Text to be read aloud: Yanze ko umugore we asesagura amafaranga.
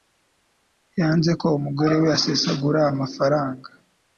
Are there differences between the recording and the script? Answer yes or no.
no